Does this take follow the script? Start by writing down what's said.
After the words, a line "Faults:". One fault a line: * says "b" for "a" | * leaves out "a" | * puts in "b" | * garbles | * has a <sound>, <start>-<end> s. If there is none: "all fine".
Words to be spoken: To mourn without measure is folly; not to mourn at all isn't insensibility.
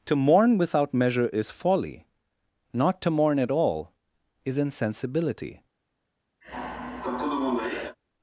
To mourn without measure is folly; not to mourn at all is insensibility.
Faults:
* says "is" for "isn't"
* has a sigh, 6.4-8.0 s